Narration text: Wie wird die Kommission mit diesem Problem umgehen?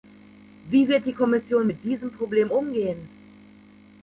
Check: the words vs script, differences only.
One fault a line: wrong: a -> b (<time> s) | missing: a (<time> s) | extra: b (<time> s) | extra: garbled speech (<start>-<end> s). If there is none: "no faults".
no faults